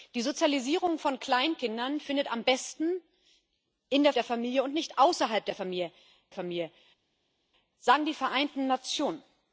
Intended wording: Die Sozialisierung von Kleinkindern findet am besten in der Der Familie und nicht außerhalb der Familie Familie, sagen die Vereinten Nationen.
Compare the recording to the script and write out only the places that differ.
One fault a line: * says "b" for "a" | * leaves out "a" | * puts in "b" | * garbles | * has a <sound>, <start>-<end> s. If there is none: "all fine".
all fine